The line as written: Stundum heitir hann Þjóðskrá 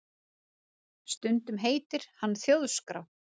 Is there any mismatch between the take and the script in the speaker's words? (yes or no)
no